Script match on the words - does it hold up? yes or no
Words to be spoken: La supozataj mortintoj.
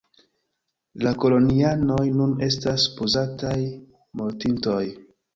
no